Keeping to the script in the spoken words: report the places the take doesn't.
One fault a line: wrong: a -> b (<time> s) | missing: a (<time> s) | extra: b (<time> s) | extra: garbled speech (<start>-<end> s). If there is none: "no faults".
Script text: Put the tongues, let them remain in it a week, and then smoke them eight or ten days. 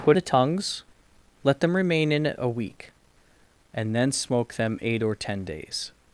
no faults